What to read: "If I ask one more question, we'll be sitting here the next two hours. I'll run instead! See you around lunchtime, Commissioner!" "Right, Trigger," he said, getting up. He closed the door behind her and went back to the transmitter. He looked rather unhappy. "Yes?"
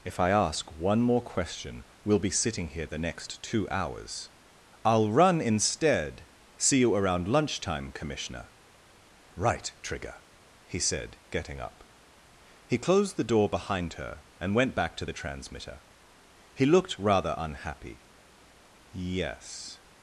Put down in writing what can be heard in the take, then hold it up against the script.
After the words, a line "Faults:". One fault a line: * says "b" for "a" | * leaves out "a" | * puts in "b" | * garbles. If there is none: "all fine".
"If I ask one more question, we'll be sitting here the next two hours. I'll run instead! See you around lunchtime, Commissioner!" "Right, Trigger," he said, getting up. He closed the door behind her and went back to the transmitter. He looked rather unhappy. "Yes?"
Faults:
all fine